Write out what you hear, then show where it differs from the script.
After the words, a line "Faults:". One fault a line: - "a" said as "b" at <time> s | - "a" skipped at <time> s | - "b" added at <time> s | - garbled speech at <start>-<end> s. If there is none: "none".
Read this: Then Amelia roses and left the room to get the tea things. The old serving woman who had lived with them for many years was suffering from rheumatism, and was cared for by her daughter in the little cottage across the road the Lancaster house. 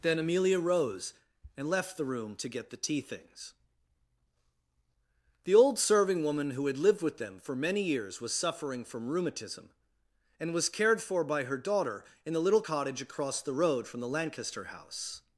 Then Amelia rose and left the room to get the tea things. The old serving woman who had lived with them for many years was suffering from rheumatism, and was cared for by her daughter in the little cottage across the road from the Lancaster house.
Faults:
- "roses" said as "rose" at 0.6 s
- "from" added at 13.9 s